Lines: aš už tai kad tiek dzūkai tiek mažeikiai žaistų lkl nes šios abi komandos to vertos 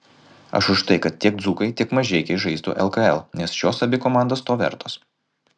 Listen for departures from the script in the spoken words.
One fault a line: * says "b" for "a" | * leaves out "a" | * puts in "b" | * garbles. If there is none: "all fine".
all fine